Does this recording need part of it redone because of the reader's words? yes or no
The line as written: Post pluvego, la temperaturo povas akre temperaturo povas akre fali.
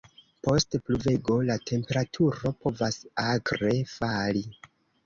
yes